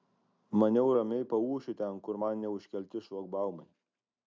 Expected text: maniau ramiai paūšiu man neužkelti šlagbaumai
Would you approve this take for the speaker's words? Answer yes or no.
no